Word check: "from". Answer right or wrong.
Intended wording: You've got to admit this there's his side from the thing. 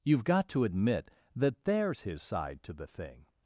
wrong